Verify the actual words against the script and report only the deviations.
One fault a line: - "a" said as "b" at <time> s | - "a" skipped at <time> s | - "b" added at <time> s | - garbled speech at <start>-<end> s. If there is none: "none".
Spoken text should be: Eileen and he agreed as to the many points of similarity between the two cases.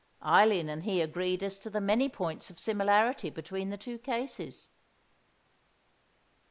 none